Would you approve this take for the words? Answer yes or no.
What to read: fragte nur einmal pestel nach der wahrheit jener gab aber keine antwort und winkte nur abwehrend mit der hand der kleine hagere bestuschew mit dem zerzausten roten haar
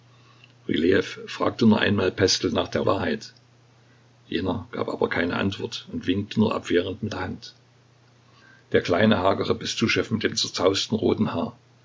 yes